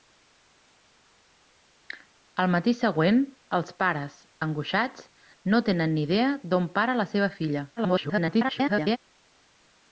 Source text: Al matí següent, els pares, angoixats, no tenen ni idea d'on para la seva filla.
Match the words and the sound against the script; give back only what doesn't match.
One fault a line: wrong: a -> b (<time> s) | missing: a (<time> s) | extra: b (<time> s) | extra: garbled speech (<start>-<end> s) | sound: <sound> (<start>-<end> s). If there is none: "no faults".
extra: garbled speech (7.8-9.0 s)